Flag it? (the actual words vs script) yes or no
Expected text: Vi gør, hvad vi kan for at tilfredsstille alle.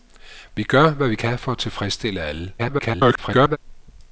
yes